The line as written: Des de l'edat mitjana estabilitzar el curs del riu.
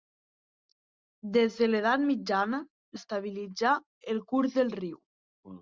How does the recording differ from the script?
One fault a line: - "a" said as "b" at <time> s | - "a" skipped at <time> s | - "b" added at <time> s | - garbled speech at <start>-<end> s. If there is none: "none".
none